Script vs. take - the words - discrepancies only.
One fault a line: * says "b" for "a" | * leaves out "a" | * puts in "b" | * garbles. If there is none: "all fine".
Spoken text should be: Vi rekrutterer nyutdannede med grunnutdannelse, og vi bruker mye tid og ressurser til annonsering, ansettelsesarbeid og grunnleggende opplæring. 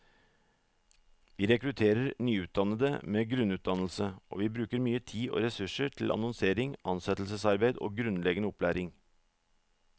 all fine